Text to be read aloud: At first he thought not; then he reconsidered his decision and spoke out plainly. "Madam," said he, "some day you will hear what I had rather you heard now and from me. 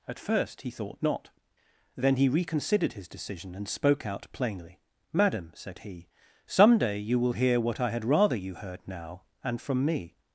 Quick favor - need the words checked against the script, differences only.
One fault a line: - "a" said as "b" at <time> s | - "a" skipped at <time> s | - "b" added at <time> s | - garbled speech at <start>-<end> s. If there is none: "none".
none